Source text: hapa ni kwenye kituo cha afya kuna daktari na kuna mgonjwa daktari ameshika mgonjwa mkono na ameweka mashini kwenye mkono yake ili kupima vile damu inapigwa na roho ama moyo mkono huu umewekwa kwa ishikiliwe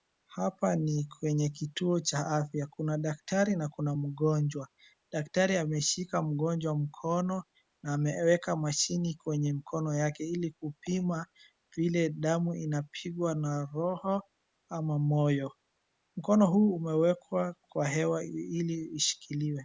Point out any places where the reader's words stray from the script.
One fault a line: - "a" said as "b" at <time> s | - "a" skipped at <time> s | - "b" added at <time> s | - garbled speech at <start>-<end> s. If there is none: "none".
- "hewa ili" added at 17.9 s